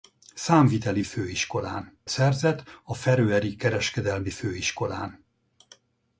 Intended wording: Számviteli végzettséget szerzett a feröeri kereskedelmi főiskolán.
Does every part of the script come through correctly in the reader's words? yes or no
no